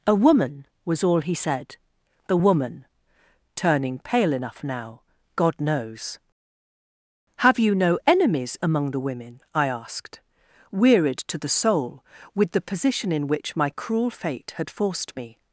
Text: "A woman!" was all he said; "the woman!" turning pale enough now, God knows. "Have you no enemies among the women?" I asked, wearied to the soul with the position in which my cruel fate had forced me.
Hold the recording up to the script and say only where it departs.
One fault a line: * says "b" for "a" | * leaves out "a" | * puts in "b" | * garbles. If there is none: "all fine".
all fine